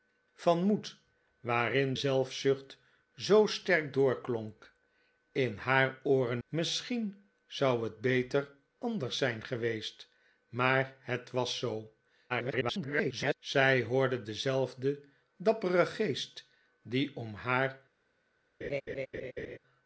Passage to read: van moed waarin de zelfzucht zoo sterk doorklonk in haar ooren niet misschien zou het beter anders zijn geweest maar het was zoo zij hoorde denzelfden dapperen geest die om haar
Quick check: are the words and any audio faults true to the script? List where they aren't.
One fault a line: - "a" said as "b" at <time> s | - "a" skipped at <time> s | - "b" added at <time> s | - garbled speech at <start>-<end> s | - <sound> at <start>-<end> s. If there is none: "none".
- "de" skipped at 1.9 s
- "niet" skipped at 6.4 s
- garbled speech at 12.3-13.3 s
- laugh at 18.6-19.6 s